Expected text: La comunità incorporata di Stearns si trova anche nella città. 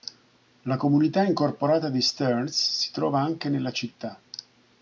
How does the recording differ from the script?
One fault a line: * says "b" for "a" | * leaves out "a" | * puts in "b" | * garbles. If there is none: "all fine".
all fine